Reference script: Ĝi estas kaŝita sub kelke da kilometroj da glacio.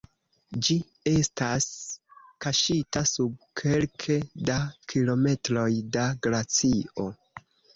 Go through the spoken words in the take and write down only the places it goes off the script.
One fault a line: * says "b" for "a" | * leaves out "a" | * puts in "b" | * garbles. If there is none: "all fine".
all fine